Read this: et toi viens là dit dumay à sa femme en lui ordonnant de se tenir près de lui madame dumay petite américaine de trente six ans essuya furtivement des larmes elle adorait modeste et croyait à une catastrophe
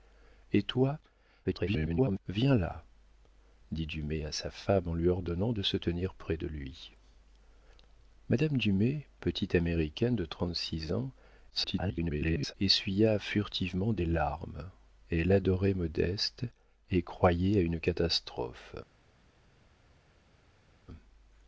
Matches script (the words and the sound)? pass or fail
fail